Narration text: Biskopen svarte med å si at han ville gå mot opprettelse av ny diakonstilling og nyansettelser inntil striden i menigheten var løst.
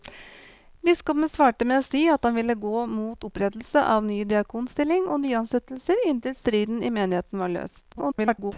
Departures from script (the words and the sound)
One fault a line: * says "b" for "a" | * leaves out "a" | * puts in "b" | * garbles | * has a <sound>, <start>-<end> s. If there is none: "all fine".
* garbles